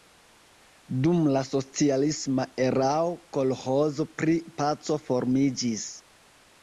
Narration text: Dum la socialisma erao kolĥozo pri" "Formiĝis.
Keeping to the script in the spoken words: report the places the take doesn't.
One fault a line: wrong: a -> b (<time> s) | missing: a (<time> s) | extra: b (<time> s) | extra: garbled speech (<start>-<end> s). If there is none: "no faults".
extra: Paco (4.6 s)